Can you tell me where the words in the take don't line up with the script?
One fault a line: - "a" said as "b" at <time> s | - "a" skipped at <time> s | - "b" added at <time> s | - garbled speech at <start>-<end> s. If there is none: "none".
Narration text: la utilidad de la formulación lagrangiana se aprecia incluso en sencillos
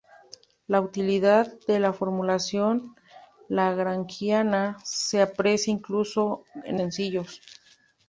none